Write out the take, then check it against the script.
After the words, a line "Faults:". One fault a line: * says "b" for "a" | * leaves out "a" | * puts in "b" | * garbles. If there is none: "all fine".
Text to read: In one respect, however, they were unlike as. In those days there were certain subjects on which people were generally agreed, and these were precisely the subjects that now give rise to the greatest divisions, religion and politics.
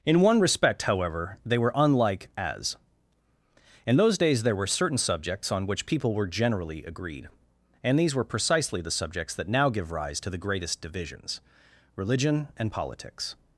In one respect, however, they were unlike as. In those days there were certain subjects on which people were generally agreed, and these were precisely the subjects that now give rise to the greatest divisions, religion and politics.
Faults:
all fine